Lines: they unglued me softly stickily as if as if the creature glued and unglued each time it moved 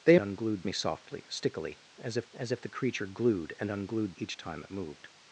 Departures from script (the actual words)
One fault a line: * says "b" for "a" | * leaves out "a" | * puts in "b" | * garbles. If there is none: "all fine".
all fine